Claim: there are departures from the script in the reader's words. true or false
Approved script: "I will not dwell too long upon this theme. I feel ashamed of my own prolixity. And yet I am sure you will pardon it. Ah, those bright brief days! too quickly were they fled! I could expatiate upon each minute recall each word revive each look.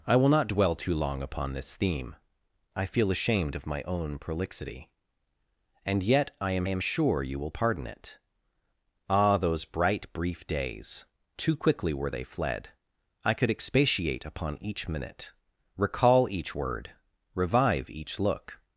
true